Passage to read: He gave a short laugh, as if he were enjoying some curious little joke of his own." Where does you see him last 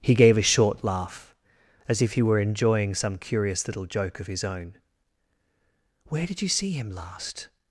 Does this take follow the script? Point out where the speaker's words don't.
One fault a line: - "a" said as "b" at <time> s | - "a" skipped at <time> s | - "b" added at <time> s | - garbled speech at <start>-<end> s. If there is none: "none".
- "does" said as "did" at 6.2 s